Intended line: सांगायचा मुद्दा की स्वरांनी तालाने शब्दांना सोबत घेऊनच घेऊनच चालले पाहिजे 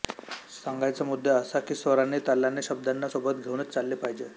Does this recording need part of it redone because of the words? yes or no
yes